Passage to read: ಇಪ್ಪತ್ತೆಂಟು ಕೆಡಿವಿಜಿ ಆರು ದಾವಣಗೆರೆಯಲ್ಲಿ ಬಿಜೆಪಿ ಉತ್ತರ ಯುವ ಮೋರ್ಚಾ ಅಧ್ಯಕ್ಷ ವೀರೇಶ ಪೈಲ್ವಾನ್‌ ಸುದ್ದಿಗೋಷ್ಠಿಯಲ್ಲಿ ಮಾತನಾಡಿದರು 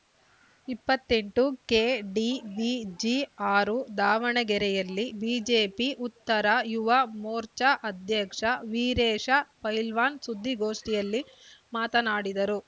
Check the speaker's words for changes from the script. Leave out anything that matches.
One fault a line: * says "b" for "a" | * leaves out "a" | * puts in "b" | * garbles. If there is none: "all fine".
all fine